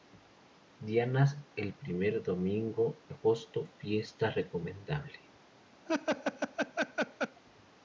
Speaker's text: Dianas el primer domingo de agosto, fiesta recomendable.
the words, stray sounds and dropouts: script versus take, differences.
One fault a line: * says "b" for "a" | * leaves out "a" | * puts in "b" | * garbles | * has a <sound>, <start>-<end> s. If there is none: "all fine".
* leaves out "de"
* has a laugh, 5.9-7.4 s